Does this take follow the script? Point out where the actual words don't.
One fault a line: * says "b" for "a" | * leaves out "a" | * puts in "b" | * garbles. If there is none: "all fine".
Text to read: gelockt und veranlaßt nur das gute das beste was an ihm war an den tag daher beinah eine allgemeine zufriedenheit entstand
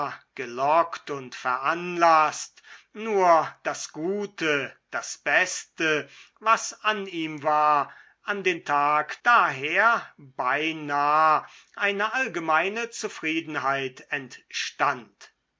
all fine